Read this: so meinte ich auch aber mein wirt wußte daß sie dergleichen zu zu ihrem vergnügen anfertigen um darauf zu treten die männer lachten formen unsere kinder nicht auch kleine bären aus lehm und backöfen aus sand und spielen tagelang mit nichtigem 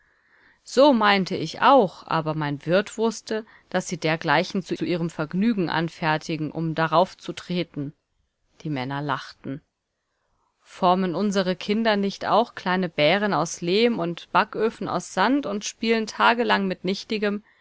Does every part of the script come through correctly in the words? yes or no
yes